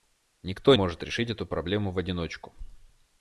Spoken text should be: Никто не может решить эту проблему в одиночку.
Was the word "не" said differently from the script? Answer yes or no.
yes